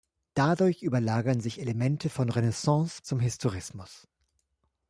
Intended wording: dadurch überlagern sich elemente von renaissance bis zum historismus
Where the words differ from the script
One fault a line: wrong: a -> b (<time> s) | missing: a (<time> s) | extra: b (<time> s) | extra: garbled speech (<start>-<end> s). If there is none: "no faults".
missing: bis (3.0 s)